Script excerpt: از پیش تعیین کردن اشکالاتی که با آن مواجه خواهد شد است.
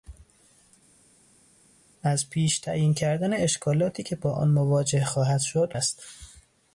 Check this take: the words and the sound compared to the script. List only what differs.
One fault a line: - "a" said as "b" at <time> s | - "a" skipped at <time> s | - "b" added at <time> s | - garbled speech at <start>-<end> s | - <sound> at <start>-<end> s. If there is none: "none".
none